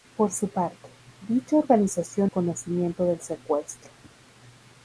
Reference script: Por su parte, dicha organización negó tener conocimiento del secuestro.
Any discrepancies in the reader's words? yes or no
yes